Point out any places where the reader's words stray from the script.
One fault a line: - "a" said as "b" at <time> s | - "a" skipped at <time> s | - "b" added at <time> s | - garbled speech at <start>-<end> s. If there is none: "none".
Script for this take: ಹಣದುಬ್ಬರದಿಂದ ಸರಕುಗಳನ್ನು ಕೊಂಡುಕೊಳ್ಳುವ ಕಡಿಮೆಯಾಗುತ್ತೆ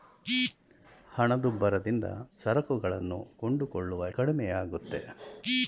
none